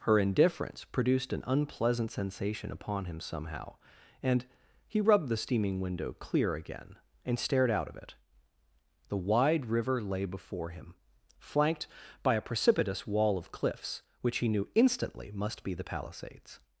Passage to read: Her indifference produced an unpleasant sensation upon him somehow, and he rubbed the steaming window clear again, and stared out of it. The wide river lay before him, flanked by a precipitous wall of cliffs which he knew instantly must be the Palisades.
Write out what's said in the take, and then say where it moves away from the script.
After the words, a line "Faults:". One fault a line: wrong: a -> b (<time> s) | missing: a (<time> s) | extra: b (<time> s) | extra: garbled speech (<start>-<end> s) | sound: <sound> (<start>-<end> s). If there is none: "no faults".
Her indifference produced an unpleasant sensation upon him somehow, and he rubbed the steaming window clear again, and stared out of it. The wide river lay before him, flanked by a precipitous wall of cliffs which he knew instantly must be the Palisades.
Faults:
no faults